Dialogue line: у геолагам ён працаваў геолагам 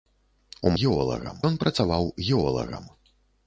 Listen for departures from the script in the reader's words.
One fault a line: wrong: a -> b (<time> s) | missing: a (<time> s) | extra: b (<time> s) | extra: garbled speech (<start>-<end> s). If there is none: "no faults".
no faults